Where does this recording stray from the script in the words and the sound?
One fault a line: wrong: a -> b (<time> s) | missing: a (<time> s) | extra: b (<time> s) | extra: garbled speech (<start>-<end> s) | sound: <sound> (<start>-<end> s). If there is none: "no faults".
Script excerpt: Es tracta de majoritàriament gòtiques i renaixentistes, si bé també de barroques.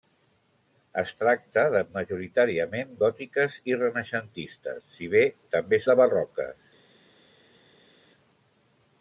no faults